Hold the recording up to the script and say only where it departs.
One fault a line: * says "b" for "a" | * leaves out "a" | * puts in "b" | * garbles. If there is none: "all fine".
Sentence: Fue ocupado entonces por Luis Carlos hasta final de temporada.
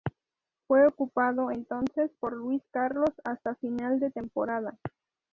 all fine